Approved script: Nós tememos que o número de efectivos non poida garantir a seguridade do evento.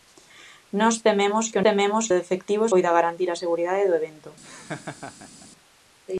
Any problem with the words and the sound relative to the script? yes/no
yes